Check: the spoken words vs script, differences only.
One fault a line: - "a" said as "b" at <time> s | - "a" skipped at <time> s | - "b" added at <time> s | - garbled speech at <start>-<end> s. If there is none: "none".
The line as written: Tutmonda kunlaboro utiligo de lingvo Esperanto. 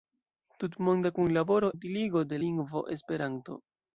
none